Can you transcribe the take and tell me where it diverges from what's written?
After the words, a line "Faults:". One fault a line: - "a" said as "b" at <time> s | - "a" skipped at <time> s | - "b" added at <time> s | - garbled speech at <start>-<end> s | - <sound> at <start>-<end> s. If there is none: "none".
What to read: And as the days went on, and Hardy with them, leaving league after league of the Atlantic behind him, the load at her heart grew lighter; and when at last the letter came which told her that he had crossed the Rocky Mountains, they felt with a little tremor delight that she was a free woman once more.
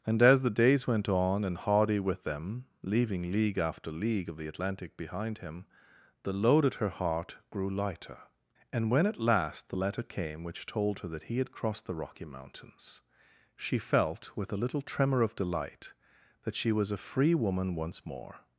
And as the days went on, and Hardy with them, leaving league after league of the Atlantic behind him, the load at her heart grew lighter; and when at last the letter came which told her that he had crossed the Rocky Mountains, she felt with a little tremor of delight that she was a free woman once more.
Faults:
- "they" said as "she" at 13.6 s
- "of" added at 15.2 s